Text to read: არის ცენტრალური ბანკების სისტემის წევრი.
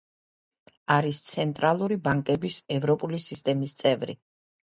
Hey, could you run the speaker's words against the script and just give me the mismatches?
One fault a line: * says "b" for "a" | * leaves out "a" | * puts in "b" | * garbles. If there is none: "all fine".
* puts in "ევროპული"